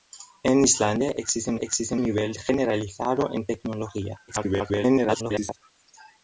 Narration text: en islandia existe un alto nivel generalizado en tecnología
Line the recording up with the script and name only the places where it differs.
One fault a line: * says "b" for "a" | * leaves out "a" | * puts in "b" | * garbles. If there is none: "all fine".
* says "existe" for "alto"
* garbles